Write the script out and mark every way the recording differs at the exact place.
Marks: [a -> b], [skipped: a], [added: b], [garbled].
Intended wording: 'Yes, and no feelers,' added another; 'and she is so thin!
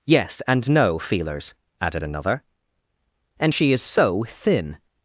'Yes, and no feelers,' added another; 'and she is so thin!